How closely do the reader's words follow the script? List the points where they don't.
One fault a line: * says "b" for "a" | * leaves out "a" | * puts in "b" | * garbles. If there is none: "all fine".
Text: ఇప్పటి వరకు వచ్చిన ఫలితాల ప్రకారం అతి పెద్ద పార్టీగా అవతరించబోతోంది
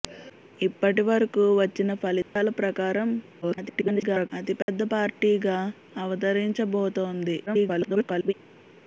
* garbles
* garbles